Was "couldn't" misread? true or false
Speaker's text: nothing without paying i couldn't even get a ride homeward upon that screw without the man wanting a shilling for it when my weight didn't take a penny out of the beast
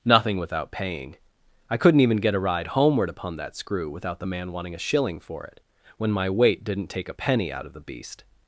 false